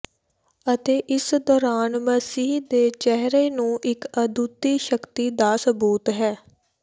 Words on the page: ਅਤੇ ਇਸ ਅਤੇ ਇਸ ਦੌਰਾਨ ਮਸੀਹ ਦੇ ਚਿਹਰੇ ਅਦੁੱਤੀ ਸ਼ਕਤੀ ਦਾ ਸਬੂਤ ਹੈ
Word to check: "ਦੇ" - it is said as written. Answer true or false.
true